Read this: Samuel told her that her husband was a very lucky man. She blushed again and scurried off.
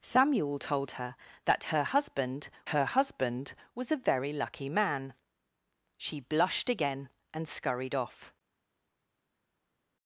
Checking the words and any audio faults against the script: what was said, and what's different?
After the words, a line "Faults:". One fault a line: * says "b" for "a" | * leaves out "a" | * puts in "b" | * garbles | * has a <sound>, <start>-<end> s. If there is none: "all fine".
Samuel told her that her husband her husband was a very lucky man. She blushed again and scurried off.
Faults:
* puts in "her husband"